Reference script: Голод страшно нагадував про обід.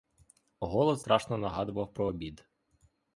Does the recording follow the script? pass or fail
pass